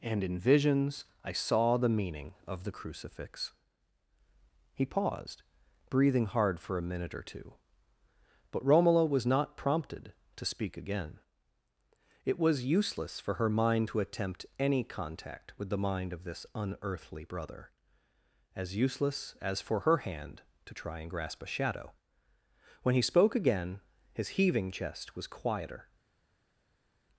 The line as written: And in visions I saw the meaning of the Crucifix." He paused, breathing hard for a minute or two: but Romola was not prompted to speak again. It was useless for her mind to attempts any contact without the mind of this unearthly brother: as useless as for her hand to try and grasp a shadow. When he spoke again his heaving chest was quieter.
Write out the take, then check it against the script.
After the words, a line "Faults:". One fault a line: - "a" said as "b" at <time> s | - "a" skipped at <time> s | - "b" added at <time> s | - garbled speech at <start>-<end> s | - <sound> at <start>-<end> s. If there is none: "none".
And in visions I saw the meaning of the Crucifix." He paused, breathing hard for a minute or two: but Romola was not prompted to speak again. It was useless for her mind to attempt any contact with the mind of this unearthly brother: as useless as for her hand to try and grasp a shadow. When he spoke again his heaving chest was quieter.
Faults:
- "attempts" said as "attempt" at 14.0 s
- "without" said as "with" at 15.6 s